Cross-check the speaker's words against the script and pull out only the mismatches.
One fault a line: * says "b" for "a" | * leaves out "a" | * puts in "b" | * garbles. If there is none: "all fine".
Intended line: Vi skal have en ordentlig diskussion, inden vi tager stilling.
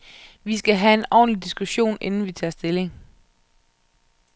all fine